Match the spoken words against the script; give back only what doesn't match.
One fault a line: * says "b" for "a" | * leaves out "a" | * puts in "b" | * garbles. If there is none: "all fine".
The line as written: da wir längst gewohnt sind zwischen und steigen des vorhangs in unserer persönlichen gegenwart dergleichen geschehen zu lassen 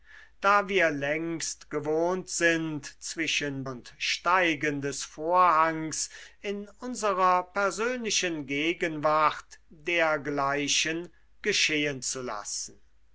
all fine